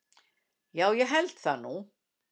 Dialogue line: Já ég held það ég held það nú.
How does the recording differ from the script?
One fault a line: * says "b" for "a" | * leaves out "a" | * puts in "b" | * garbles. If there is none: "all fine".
* leaves out "ég held það"